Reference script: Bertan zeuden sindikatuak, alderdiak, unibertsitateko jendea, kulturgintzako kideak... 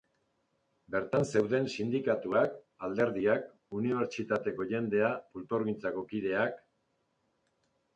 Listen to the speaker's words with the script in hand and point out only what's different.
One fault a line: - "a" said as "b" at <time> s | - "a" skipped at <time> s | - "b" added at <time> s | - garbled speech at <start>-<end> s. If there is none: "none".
none